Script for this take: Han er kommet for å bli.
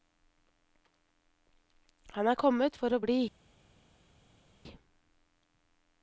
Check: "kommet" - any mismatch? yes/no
no